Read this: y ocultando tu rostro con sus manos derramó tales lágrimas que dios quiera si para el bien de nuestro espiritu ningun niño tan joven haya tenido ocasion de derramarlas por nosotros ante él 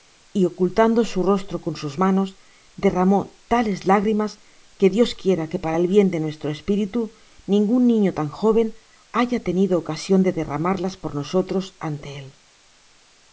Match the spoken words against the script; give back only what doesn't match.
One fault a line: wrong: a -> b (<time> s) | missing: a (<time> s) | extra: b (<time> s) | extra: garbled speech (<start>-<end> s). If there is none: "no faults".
wrong: tu -> su (1.1 s)
wrong: si -> que (5.5 s)